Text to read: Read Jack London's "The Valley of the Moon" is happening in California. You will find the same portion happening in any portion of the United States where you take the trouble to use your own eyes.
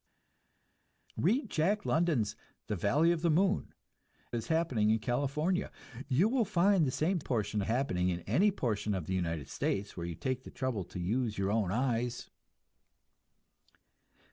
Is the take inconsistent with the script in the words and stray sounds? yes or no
no